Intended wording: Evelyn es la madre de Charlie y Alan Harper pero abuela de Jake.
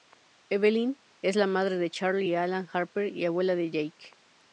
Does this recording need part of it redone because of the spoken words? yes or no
yes